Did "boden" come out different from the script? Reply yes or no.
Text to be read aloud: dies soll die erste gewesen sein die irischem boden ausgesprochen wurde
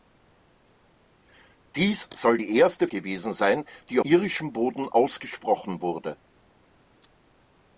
no